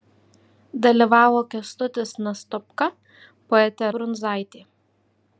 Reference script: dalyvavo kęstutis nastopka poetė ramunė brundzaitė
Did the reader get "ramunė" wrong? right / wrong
wrong